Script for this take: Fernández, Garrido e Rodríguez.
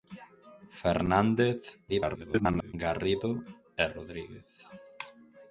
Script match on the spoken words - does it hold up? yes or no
no